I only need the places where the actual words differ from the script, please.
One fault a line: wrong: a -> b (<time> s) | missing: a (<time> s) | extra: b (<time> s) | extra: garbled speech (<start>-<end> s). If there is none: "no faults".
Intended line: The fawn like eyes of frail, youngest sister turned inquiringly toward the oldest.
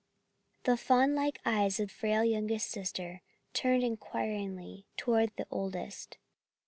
no faults